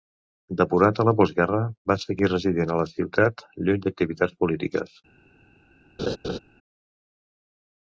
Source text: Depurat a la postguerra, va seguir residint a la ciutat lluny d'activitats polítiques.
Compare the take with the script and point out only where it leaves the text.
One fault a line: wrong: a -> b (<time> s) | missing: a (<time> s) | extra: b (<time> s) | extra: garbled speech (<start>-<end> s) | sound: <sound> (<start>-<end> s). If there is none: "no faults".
sound: laugh (6.0-6.4 s)